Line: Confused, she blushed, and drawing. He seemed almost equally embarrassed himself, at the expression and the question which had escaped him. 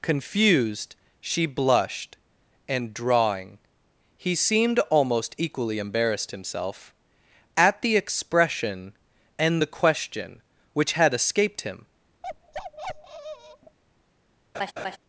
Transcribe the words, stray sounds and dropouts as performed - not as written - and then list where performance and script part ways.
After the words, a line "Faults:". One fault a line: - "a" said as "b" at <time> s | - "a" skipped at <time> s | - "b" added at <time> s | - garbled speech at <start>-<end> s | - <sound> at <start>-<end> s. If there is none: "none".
Confused, she blushed, and drawing. He seemed almost equally embarrassed himself, at the expression and the question which had escaped him.
Faults:
- bark at 12.2-13.8 s
- laugh at 14.5-15.0 s